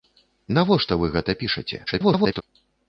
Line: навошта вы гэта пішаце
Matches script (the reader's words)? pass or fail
fail